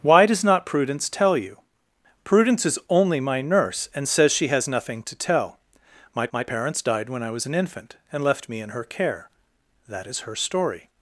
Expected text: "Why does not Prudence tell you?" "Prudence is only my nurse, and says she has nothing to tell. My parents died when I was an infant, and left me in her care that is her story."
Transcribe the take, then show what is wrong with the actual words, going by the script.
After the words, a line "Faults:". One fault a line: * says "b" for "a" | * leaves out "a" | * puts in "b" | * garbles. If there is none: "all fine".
"Why does not Prudence tell you?" "Prudence is only my nurse, and says she has nothing to tell. My my parents died when I was an infant, and left me in her care that is her story."
Faults:
* puts in "my"